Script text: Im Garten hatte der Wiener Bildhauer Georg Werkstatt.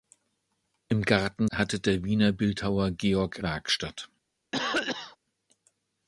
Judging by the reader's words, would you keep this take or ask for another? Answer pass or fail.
pass